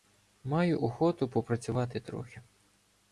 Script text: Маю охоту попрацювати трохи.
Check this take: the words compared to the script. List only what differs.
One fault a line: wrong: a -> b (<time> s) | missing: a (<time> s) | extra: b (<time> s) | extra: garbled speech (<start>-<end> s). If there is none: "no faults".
no faults